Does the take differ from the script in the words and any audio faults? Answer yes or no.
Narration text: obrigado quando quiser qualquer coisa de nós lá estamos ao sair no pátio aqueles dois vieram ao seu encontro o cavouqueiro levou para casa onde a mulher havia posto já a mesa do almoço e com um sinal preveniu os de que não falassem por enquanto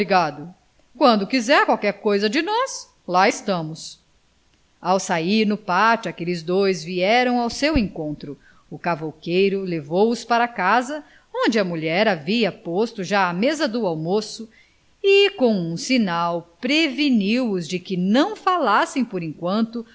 yes